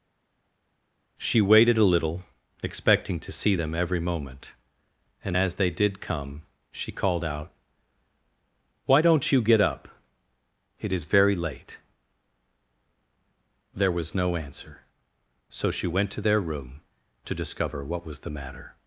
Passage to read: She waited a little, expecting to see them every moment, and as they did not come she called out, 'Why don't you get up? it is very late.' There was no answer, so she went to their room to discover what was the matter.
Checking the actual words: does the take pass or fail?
fail